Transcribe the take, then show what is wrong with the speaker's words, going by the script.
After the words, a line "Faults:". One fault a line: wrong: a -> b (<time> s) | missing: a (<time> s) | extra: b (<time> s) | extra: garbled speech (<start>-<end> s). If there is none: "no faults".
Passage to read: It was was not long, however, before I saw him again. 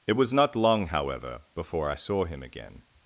It was not long, however, before I saw him again.
Faults:
missing: was (0.3 s)